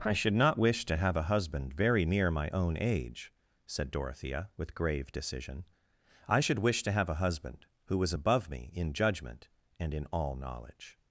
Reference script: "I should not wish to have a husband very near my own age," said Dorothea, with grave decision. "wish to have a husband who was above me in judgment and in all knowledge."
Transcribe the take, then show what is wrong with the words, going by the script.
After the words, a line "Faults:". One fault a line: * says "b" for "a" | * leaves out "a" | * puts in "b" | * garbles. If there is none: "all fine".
"I should not wish to have a husband very near my own age," said Dorothea, with grave decision. "I should wish to have a husband who was above me in judgment and in all knowledge."
Faults:
* puts in "I should"